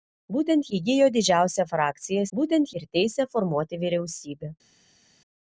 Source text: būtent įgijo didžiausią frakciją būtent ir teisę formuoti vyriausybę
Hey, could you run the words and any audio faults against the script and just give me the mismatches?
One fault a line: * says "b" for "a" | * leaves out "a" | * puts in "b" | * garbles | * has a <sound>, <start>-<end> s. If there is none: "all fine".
all fine